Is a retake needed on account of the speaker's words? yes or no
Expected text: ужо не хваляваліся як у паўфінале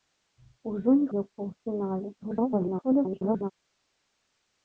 yes